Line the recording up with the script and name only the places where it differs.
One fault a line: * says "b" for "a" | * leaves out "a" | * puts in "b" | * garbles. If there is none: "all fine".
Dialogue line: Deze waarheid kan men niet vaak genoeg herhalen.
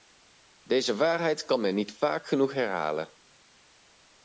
all fine